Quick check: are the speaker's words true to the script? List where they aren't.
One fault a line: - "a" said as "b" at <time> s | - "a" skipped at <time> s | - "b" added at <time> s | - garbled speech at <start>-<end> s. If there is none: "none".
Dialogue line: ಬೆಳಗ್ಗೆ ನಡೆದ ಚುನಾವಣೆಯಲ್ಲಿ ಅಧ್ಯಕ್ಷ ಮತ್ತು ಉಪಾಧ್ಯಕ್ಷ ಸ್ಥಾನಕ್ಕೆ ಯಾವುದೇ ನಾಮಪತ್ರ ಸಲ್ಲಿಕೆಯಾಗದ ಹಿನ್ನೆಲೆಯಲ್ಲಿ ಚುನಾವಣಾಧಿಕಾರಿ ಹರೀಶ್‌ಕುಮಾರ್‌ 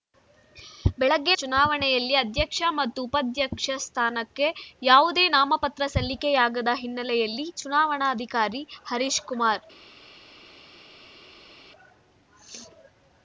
- "ನಡೆದ" skipped at 1.3 s